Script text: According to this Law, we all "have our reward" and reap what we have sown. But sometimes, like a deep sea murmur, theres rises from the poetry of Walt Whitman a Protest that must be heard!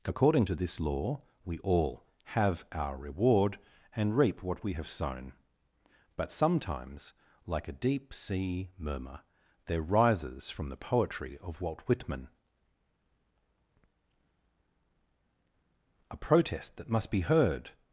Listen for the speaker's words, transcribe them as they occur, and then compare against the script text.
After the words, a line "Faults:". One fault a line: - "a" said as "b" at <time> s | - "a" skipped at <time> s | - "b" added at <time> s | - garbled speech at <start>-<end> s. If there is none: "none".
According to this Law, we all "have our reward" and reap what we have sown. But sometimes, like a deep sea murmur, there rises from the poetry of Walt Whitman a Protest that must be heard!
Faults:
- "theres" said as "there" at 9.6 s